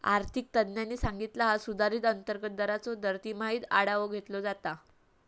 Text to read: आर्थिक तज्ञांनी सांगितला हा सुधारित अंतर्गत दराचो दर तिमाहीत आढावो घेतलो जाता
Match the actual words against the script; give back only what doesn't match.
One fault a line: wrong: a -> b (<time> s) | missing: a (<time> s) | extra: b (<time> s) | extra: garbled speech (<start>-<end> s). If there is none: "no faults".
no faults